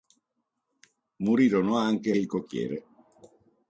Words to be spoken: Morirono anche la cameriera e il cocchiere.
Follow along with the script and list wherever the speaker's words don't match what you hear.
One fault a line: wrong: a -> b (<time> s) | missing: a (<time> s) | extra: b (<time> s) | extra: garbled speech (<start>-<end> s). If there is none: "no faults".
missing: la cameriera e (2.1 s)